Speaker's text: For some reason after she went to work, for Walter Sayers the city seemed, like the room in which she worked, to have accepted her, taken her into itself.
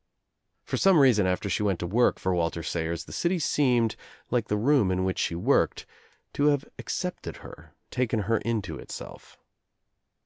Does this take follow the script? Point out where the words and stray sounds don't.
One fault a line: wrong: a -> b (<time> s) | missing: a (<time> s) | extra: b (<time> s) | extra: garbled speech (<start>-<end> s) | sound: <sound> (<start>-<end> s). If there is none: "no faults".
no faults